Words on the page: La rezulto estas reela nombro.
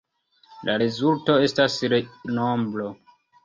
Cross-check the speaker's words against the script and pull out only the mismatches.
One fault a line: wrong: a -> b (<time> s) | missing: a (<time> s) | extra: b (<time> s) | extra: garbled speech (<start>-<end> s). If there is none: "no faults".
missing: reela (1.8 s)